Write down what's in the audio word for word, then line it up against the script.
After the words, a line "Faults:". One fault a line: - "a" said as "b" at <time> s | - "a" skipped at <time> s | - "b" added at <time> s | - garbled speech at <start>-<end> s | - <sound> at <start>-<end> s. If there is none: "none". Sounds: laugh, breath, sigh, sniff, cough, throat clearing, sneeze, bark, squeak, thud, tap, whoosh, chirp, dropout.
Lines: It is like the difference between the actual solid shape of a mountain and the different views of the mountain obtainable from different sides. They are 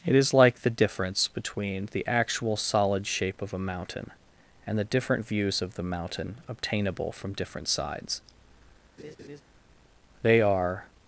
It is like the difference between the actual solid shape of a mountain and the different views of the mountain obtainable from different sides. They are
Faults:
- laugh at 9.0-9.4 s